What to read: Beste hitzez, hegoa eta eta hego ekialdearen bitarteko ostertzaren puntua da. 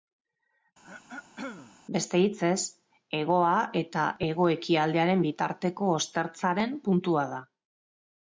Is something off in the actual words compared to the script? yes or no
yes